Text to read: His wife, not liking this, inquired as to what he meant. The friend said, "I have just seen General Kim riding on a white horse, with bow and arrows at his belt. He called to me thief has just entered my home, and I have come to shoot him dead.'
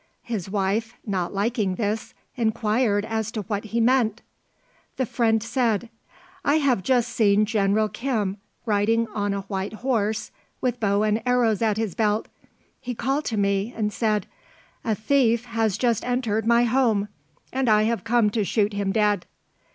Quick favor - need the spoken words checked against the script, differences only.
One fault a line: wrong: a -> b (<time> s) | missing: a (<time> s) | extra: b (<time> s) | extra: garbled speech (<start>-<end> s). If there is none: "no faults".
extra: and said A (13.7 s)